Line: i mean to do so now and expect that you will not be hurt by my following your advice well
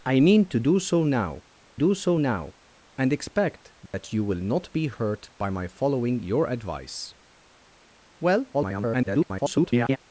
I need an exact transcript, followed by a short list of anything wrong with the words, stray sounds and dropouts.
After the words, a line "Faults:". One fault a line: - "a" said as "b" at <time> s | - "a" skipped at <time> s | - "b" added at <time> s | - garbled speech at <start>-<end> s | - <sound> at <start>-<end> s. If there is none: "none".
i mean to do so now do so now and expect that you will not be hurt by my following your advice well [garbled]
Faults:
- "do so now" added at 1.7 s
- dropout at 3.9-3.9 s
- garbled speech at 8.5-10.0 s